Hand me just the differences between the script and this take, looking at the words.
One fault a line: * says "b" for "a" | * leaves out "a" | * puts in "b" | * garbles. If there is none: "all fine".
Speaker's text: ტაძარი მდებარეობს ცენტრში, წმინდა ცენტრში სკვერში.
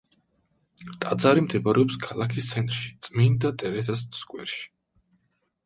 * puts in "ქალაქის"
* says "ტერეზას" for "ცენტრში"